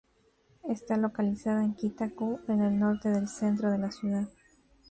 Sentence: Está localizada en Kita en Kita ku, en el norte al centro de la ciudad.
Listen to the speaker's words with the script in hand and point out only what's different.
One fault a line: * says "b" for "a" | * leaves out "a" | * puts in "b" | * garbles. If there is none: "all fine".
* leaves out "en Kita"
* says "del" for "al"